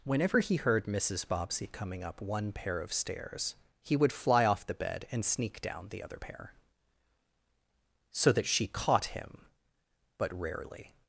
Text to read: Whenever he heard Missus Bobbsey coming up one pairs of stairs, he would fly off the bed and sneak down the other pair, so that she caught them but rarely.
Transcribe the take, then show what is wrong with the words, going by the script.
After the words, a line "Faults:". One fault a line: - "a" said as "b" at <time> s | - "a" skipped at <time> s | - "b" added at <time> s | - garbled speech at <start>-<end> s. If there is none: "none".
Whenever he heard Missus Bobbsey coming up one pair of stairs, he would fly off the bed and sneak down the other pair, so that she caught him but rarely.
Faults:
- "pairs" said as "pair" at 2.5 s
- "them" said as "him" at 9.1 s